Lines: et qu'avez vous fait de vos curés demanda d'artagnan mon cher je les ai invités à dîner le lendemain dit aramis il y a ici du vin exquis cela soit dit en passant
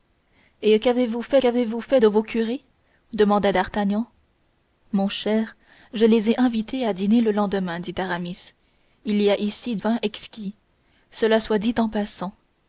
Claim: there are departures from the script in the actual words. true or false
true